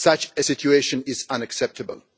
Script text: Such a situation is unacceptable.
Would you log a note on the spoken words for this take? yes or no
no